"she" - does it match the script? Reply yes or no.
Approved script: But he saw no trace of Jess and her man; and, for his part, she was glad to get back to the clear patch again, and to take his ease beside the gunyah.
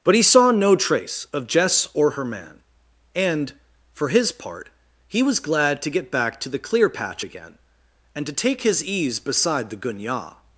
no